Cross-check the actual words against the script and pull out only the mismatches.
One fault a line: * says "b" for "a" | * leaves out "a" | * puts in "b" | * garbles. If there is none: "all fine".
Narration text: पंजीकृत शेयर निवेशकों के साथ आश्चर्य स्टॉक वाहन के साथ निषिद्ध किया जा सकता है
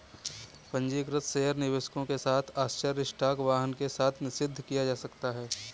all fine